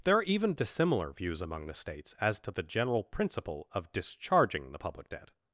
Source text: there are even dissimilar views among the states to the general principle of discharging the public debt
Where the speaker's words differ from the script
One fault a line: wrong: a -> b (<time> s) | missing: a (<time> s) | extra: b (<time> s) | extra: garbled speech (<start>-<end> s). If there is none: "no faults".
extra: as (2.2 s)